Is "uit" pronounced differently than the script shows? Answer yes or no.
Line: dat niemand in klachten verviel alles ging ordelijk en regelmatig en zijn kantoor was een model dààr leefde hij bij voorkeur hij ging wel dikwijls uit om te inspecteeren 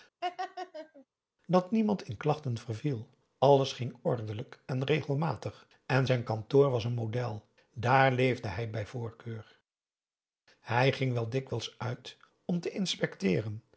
no